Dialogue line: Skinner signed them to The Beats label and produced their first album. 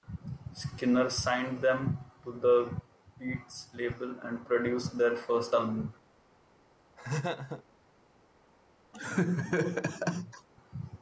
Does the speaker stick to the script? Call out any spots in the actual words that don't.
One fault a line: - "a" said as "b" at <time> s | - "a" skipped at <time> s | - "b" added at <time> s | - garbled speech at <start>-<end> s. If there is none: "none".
none